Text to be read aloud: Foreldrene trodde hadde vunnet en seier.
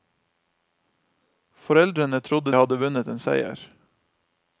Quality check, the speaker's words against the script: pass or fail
pass